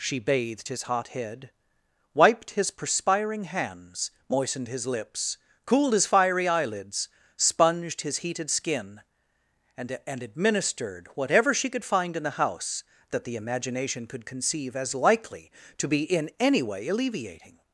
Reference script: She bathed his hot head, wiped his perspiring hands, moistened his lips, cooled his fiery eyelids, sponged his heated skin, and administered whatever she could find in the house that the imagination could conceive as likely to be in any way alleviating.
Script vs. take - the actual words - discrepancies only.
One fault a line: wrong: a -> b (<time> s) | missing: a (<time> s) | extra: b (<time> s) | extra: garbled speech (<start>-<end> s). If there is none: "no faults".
extra: and (10.1 s)